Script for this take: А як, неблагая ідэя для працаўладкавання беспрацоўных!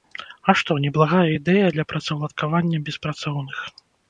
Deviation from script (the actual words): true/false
true